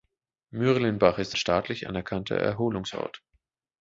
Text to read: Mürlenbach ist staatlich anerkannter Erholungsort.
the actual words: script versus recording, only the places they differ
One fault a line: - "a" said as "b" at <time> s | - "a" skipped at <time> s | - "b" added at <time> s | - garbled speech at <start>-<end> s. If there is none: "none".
none